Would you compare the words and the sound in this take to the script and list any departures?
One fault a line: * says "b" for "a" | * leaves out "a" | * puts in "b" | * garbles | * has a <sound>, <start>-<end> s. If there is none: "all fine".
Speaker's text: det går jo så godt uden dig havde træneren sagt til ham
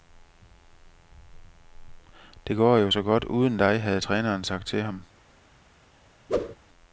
* has a whoosh, 6.3-6.6 s